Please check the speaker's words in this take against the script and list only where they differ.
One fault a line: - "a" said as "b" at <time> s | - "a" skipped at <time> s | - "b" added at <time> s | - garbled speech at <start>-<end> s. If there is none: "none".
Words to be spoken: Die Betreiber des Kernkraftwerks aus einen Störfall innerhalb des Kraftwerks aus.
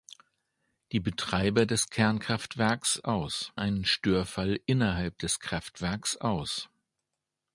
none